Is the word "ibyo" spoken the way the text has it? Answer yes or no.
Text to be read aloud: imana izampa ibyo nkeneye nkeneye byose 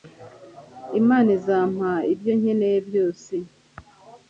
yes